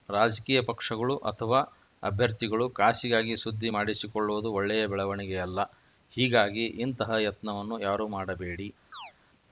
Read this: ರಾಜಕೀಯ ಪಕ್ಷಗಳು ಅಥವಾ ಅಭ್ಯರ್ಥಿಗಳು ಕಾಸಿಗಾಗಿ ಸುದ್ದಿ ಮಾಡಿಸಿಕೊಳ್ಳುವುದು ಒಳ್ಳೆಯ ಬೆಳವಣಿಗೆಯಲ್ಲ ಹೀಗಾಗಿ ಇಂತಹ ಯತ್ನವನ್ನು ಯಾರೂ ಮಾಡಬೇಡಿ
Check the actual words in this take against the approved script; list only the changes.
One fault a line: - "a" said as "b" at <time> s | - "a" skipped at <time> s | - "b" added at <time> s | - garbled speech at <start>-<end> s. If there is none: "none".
none